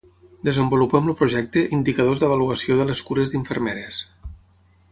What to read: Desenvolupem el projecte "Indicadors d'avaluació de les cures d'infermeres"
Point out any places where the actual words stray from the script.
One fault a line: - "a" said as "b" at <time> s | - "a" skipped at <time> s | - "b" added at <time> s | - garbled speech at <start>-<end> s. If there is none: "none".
none